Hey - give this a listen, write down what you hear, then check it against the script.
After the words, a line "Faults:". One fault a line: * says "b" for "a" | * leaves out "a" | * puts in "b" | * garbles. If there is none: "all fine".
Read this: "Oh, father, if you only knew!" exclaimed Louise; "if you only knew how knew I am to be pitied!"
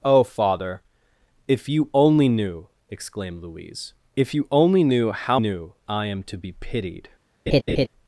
"Oh, father, if you only knew!" exclaimed Louise; "if you only knew how knew I am to be pitied!"
Faults:
all fine